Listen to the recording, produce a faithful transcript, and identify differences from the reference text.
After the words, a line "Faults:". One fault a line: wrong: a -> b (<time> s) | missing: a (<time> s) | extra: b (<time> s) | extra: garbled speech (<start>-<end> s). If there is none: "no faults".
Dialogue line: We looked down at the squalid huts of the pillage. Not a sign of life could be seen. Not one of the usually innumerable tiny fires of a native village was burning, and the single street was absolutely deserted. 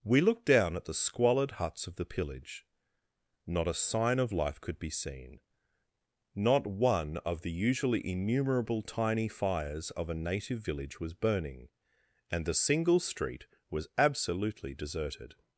We looked down at the squalid huts of the pillage. Not a sign of life could be seen. Not one of the usually innumerable tiny fires of a native village was burning, and the single street was absolutely deserted.
Faults:
no faults